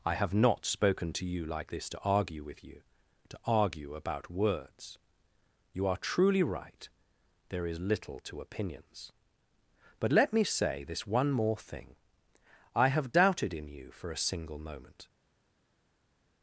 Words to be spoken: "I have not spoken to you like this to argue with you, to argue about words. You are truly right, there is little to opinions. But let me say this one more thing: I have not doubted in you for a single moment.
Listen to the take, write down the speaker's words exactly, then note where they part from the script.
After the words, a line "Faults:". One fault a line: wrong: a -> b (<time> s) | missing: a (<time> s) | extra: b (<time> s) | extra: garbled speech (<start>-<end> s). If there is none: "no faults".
"I have not spoken to you like this to argue with you, to argue about words. You are truly right, there is little to opinions. But let me say this one more thing: I have doubted in you for a single moment.
Faults:
missing: not (13.1 s)